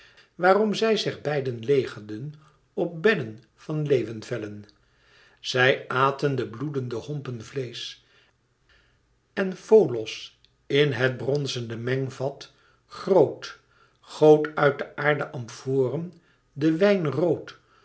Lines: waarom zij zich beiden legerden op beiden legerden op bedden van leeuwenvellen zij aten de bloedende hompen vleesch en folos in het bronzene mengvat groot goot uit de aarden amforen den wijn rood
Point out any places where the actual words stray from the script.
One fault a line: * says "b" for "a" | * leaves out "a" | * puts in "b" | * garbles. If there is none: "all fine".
* leaves out "beiden legerden op"